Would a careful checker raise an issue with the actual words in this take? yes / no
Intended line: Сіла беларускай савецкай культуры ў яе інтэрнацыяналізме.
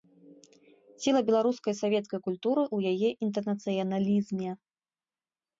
no